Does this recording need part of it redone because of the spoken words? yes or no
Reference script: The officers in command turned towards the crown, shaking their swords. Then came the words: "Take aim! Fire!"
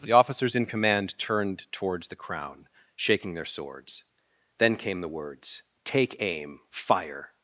no